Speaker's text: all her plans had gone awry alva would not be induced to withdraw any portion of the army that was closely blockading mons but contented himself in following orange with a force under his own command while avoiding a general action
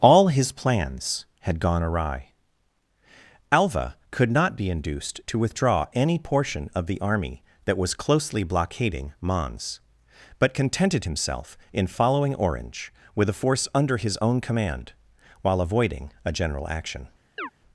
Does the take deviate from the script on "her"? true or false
true